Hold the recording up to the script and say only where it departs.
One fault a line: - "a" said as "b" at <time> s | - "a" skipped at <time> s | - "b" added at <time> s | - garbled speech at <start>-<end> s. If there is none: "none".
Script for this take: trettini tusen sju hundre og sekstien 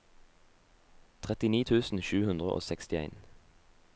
none